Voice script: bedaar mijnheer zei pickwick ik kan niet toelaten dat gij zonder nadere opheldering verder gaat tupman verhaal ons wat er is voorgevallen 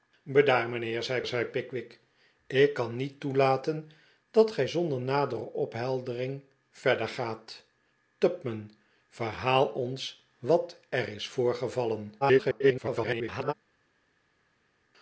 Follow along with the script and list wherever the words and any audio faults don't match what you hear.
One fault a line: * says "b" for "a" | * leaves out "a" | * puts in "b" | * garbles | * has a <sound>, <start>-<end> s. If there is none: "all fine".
* puts in "zei"
* garbles